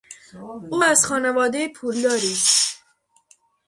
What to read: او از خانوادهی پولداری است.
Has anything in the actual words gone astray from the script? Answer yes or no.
no